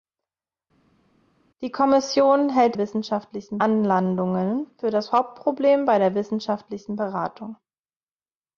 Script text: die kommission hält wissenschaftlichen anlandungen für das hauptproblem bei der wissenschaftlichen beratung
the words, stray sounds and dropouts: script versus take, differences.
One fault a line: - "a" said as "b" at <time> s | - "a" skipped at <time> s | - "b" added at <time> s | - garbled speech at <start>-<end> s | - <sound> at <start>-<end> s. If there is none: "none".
none